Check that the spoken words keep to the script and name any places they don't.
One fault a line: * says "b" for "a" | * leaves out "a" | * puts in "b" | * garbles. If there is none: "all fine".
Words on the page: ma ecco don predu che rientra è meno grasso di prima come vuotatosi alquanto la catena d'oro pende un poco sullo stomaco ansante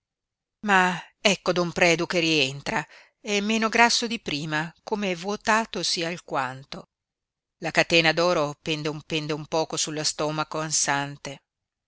* puts in "pende un"